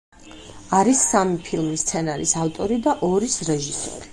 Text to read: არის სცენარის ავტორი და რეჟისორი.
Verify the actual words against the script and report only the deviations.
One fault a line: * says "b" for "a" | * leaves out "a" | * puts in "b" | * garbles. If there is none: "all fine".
* puts in "სამი ფილმის"
* puts in "ორის"